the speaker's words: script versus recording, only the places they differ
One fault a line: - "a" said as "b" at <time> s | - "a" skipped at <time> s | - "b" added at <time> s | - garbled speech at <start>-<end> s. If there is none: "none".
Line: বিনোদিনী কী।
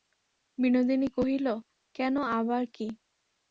- "কহিল কেন আবার" added at 1.1 s